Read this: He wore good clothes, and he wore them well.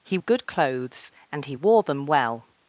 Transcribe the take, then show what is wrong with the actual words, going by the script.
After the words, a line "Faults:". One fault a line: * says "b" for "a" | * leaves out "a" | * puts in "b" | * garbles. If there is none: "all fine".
He good clothes, and he wore them well.
Faults:
* leaves out "wore"